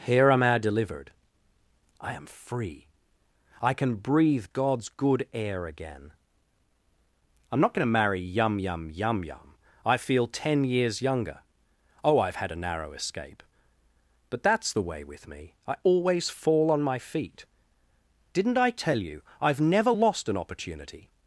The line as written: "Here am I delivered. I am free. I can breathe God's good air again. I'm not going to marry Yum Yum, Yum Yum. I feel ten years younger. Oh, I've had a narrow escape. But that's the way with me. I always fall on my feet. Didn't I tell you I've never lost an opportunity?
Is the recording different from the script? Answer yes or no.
no